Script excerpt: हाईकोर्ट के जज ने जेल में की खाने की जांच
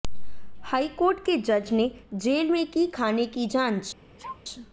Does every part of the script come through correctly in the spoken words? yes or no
yes